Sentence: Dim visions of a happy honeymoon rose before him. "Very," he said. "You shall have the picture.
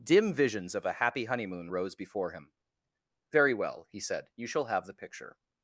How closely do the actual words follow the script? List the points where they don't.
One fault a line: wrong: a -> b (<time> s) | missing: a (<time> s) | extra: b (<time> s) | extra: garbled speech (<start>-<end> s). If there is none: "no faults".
extra: well (3.5 s)